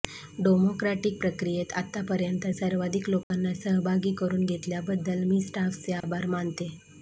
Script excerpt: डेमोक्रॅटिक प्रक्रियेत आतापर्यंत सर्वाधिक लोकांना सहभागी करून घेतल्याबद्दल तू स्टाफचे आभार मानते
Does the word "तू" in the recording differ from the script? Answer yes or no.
yes